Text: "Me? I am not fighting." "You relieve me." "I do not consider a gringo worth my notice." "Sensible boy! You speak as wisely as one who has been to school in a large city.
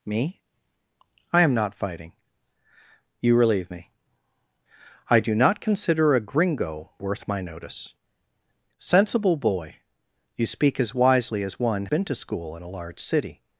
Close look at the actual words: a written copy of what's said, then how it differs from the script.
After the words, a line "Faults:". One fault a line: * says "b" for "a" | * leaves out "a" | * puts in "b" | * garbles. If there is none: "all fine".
"Me? I am not fighting." "You relieve me." "I do not consider a gringo worth my notice." "Sensible boy! You speak as wisely as one been to school in a large city.
Faults:
* leaves out "who has"